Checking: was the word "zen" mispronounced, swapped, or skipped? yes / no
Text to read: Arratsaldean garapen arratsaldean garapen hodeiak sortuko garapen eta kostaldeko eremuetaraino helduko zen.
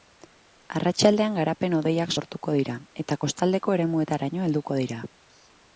yes